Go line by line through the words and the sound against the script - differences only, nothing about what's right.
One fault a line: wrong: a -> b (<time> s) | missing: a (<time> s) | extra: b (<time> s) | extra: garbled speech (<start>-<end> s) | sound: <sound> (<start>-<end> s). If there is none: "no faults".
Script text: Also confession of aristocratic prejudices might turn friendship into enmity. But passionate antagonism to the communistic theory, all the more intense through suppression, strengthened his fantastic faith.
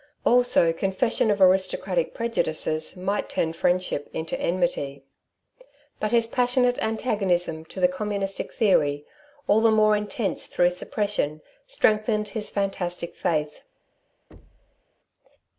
extra: his (6.1 s)
sound: thud (14.3-14.8 s)